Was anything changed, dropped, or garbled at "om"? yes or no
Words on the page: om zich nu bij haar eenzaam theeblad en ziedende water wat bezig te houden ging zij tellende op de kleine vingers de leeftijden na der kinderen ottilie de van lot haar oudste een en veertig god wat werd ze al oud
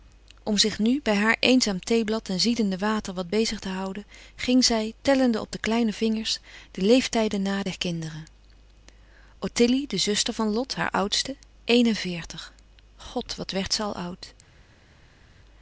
no